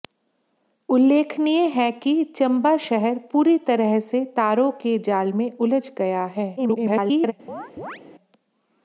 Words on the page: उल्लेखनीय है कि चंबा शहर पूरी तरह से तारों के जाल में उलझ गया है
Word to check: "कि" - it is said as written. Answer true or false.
true